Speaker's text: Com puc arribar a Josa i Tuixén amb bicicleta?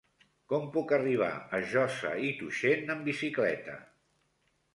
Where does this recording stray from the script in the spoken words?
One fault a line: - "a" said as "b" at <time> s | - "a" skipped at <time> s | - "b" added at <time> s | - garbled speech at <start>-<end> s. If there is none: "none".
none